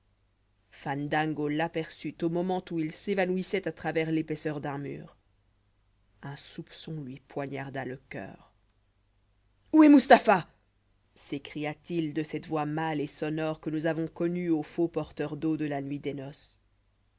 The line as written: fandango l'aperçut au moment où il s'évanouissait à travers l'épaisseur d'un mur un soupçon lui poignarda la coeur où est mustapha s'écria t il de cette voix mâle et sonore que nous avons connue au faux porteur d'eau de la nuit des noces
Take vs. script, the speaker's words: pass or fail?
fail